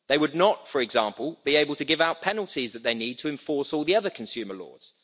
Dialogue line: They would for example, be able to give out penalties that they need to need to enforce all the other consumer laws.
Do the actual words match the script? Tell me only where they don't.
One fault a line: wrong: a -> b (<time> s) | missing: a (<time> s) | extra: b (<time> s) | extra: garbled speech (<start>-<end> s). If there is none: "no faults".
extra: not (0.3 s)
missing: need to (3.3 s)